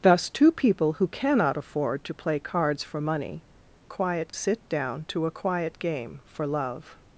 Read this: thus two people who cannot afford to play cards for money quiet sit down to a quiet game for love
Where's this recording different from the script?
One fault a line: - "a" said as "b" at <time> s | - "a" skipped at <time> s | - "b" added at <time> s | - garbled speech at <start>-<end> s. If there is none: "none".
none